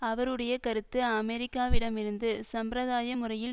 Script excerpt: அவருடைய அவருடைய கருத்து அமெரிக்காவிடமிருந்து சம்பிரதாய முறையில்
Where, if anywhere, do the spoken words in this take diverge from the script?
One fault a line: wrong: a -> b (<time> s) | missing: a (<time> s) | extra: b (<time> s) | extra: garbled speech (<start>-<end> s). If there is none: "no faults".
missing: அவருடைய (0.5 s)